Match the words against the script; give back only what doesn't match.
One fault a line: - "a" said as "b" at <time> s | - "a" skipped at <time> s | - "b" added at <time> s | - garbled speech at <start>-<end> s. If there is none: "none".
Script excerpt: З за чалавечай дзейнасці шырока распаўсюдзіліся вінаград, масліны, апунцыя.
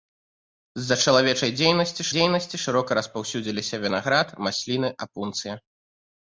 - "дзейнасці" added at 2.1 s